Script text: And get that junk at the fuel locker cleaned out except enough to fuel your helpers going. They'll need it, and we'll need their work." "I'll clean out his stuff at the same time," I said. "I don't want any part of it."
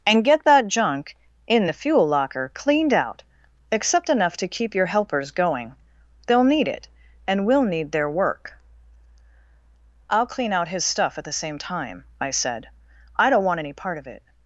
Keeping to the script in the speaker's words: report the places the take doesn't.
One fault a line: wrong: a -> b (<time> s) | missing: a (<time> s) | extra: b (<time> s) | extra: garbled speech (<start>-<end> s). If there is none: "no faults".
wrong: at -> in (1.4 s)
wrong: fuel -> keep (4.5 s)